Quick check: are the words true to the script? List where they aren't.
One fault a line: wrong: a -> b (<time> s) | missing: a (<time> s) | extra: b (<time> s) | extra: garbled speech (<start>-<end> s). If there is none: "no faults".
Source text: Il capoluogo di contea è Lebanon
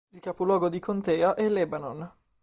no faults